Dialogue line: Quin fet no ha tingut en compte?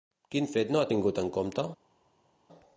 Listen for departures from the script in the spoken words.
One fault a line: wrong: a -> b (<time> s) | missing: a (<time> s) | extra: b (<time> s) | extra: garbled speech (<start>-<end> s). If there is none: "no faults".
no faults